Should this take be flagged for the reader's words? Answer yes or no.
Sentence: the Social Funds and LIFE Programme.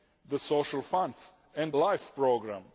no